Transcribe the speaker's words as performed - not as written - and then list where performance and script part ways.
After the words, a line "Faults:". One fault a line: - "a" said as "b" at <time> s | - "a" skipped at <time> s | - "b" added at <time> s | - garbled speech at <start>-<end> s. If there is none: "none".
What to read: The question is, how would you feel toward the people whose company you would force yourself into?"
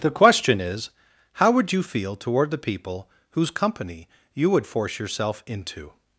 The question is, how would you feel toward the people whose company you would force yourself into?"
Faults:
none